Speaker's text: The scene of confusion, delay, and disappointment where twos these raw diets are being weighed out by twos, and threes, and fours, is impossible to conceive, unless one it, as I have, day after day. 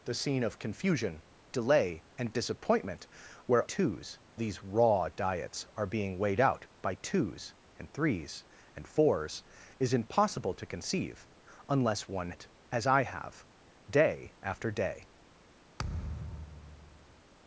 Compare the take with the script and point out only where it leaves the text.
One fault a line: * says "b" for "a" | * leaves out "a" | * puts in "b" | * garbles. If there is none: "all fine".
all fine